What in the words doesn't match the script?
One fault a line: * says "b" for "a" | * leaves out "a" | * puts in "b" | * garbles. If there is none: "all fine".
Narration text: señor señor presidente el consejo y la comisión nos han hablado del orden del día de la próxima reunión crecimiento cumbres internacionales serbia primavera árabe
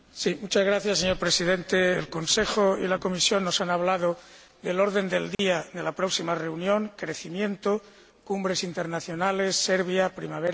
* leaves out "señor"